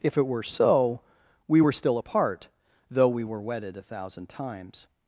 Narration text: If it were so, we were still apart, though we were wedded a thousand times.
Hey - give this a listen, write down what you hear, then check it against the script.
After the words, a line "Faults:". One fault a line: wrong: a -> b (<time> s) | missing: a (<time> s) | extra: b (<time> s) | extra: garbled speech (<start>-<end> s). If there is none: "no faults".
If it were so, we were still apart, though we were wedded a thousand times.
Faults:
no faults